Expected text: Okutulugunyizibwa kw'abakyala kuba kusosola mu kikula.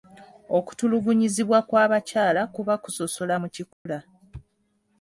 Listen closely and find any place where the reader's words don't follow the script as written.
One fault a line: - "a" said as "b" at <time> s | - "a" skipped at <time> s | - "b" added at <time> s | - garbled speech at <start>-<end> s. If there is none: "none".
none